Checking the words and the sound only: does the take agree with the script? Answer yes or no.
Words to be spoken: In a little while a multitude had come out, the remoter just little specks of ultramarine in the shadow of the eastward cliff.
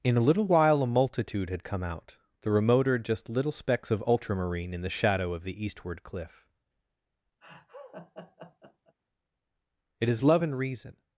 no